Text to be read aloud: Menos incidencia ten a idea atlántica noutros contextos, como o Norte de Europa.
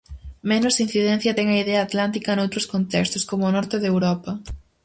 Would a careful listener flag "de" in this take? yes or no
no